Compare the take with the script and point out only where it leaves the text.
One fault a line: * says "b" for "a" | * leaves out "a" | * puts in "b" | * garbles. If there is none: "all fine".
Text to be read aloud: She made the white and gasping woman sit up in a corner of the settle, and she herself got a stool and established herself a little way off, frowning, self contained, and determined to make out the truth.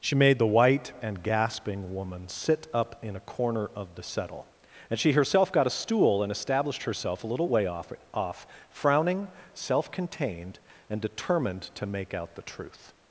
* puts in "off"